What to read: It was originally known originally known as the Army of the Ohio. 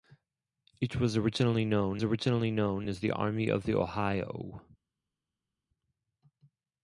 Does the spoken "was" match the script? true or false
true